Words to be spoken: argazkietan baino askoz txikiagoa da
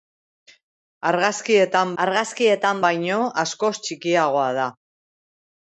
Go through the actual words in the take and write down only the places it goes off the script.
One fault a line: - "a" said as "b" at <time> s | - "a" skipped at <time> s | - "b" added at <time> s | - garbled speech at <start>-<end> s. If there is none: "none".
- "argazkietan" added at 2.0 s